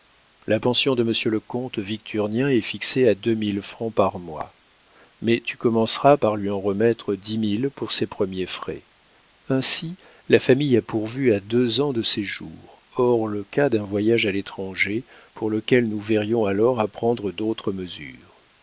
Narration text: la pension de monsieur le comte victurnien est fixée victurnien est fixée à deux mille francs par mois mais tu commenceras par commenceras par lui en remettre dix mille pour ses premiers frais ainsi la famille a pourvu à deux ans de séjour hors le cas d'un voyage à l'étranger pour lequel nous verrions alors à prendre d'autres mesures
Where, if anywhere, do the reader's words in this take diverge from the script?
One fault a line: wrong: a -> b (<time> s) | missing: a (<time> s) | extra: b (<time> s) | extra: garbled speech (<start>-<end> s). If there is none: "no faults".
missing: victurnien est fixée (3.1 s)
missing: commenceras par (6.4 s)